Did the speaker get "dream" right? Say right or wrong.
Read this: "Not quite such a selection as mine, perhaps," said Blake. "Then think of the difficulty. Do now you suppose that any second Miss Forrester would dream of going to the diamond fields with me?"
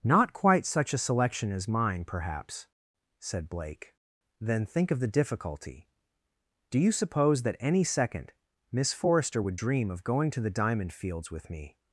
right